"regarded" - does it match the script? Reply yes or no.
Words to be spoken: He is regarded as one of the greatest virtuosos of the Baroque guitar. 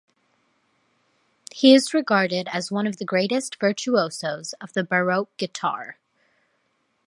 yes